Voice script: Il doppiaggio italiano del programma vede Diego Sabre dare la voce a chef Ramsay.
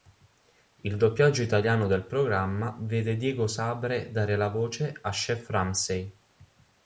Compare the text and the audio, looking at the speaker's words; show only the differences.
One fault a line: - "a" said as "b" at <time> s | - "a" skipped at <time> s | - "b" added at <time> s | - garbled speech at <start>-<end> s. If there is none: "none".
none